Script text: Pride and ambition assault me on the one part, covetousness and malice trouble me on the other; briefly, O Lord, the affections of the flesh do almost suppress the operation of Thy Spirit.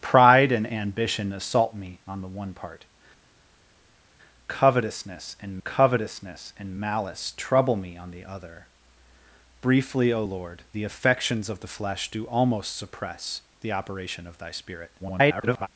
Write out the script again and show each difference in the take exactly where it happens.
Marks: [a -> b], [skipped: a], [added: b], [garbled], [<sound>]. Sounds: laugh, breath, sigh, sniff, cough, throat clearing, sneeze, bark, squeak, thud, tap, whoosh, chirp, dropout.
Pride and ambition assault me on the one part, covetousness and [added: covetousness and] malice trouble me on the other; briefly, O Lord, the affections of the flesh do almost suppress the operation of Thy Spirit. [garbled]